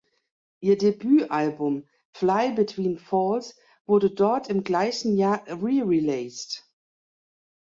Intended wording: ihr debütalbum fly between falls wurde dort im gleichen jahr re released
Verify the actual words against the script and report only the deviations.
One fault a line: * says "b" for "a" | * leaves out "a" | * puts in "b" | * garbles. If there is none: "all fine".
all fine